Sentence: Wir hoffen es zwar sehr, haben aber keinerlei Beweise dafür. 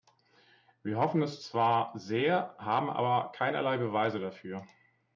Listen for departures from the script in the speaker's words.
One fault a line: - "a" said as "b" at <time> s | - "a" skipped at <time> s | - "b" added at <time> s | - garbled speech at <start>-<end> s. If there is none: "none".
none